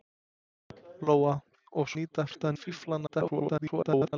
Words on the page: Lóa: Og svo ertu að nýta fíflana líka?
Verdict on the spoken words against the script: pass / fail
fail